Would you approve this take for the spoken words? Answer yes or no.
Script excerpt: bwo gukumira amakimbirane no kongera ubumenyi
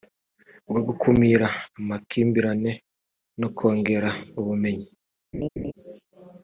yes